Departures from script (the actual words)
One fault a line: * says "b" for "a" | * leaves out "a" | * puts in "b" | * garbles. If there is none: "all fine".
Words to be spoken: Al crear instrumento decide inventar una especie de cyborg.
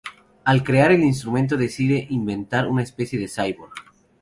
* puts in "el"